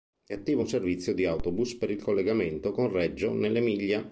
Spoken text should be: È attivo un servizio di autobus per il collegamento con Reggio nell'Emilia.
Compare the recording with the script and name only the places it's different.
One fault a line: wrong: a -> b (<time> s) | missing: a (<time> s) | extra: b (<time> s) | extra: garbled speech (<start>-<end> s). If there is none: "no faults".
no faults